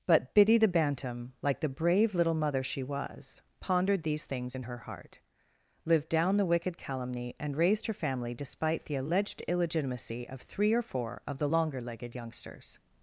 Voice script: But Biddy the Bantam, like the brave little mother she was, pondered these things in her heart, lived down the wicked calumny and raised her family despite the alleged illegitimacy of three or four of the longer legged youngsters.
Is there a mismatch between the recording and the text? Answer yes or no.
no